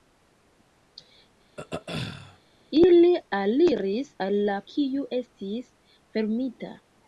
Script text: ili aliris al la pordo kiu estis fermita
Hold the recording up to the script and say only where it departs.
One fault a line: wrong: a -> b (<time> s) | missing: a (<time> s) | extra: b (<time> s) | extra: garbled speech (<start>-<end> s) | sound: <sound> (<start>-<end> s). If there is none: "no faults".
sound: throat clearing (1.6-2.4 s)
missing: pordo (4.6 s)